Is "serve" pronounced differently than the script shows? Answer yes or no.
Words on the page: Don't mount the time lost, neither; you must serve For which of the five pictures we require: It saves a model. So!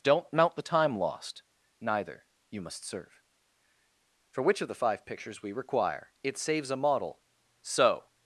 no